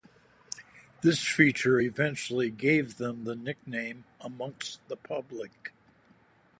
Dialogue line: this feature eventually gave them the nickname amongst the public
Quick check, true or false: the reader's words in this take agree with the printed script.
true